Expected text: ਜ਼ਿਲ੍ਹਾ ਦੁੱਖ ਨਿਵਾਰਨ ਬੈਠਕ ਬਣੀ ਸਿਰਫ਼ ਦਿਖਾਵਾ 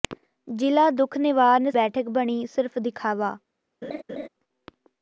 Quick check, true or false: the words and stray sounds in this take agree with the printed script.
false